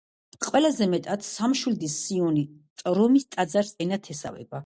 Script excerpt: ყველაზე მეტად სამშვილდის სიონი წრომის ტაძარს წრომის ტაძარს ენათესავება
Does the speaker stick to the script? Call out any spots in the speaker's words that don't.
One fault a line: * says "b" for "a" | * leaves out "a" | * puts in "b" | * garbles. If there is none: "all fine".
* leaves out "წრომის ტაძარს"